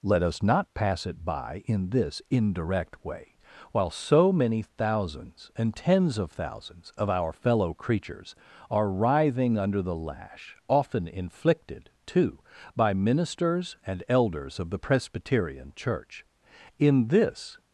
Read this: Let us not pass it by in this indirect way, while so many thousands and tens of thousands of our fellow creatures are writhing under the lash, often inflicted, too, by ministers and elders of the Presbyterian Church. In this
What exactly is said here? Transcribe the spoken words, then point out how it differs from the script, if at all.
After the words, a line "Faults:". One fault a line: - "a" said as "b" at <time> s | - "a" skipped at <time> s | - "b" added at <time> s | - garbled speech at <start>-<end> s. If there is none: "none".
Let us not pass it by in this indirect way, while so many thousands and tens of thousands of our fellow creatures are writhing under the lash, often inflicted, too, by ministers and elders of the Presbyterian Church. In this
Faults:
none